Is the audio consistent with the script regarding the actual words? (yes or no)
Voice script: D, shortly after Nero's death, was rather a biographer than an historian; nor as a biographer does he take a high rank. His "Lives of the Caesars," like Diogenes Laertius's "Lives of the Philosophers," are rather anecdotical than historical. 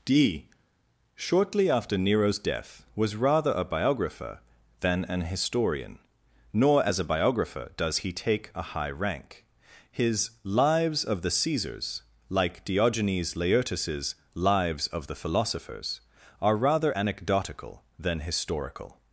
yes